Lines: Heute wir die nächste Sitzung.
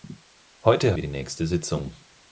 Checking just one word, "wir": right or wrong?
right